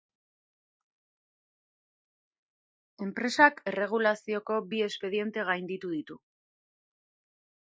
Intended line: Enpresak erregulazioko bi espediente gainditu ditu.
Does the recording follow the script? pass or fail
pass